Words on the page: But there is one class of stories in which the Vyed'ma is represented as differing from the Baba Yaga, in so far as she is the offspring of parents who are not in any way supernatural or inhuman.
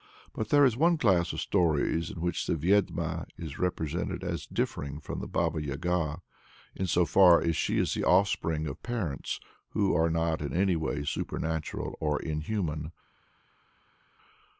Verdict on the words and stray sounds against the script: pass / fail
pass